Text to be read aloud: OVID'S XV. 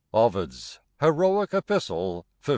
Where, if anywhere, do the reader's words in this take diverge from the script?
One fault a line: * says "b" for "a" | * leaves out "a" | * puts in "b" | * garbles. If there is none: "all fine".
* puts in "Heroic Epistle"